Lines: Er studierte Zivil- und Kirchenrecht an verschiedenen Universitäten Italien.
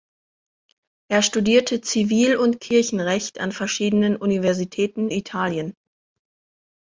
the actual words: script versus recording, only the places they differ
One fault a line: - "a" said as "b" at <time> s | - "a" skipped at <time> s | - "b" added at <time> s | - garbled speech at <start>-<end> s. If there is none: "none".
none